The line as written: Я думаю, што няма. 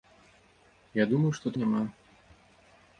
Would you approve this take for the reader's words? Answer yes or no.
yes